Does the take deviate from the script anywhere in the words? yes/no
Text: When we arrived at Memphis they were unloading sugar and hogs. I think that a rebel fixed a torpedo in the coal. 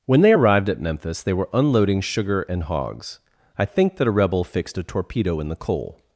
yes